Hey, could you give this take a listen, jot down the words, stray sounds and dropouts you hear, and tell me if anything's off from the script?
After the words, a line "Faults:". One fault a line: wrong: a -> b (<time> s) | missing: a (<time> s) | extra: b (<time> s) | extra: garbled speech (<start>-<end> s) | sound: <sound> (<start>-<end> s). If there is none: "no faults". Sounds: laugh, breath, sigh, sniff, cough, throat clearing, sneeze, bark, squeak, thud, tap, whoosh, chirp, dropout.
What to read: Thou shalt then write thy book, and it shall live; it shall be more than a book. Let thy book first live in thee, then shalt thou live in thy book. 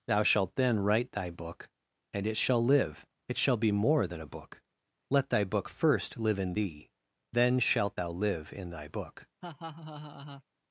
Thou shalt then write thy book, and it shall live; it shall be more than a book. Let thy book first live in thee, then shalt thou live in thy book.
Faults:
sound: laugh (9.4-10.4 s)